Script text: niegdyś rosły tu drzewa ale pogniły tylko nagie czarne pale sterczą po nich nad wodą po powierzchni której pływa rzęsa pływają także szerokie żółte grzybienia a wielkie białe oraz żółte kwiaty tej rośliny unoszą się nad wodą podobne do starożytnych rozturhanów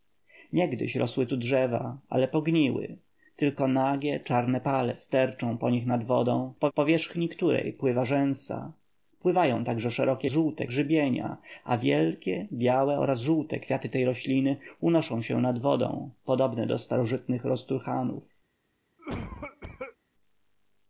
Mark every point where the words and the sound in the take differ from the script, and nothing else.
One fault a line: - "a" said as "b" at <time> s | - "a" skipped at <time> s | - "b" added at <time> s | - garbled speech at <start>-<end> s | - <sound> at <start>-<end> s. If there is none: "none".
- cough at 19.0-20.0 s